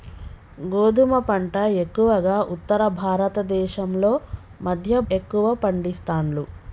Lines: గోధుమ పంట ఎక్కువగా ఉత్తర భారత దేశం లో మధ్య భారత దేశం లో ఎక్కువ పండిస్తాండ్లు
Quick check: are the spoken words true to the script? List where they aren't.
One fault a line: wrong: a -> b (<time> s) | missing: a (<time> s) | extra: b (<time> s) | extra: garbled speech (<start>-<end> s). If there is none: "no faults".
missing: భారత దేశం లో (5.0 s)